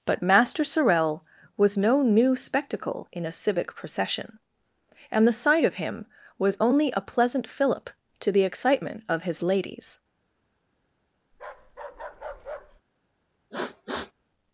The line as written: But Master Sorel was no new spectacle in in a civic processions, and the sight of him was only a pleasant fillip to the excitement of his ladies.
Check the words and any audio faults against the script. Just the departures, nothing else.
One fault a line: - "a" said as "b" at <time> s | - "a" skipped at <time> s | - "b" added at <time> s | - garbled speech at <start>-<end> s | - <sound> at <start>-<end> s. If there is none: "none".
- "in" skipped at 3.2 s
- "processions" said as "procession" at 3.8 s
- bark at 11.3-12.8 s
- sniff at 13.5-14.1 s